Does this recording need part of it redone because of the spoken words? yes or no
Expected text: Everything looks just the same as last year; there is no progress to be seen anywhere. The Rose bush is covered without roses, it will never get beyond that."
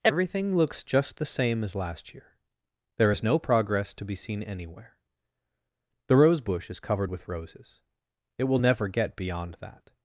yes